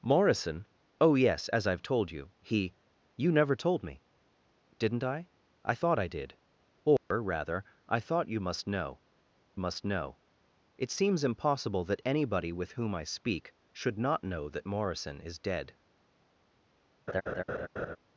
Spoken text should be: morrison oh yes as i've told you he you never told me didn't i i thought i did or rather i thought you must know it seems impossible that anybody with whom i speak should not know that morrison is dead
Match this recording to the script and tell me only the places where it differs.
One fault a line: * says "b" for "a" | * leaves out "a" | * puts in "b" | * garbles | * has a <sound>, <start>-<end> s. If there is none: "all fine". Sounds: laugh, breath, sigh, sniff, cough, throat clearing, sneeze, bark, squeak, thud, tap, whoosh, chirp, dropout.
* has a dropout, 7.0-7.1 s
* puts in "must know"
* has a laugh, 17.1-18.0 s